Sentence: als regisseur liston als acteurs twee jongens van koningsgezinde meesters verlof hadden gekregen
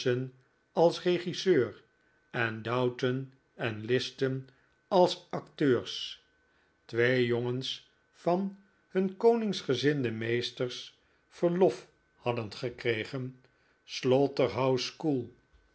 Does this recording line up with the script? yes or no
no